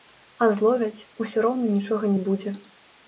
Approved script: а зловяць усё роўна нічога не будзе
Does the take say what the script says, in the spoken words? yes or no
yes